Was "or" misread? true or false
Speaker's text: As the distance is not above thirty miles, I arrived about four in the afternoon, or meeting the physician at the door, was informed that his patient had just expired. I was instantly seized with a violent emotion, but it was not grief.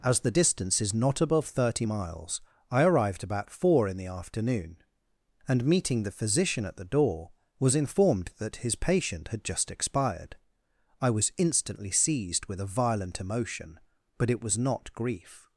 true